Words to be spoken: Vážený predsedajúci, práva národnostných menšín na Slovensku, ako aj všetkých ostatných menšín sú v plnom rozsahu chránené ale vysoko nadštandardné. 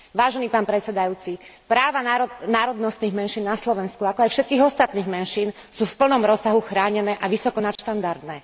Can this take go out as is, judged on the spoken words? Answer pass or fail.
fail